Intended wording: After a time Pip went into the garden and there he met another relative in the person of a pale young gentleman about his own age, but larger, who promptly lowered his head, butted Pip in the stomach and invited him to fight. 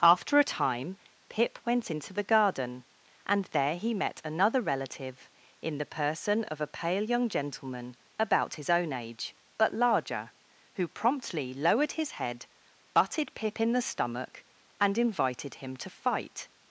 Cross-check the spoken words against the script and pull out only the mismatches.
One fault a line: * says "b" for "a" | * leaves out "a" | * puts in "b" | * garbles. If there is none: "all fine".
all fine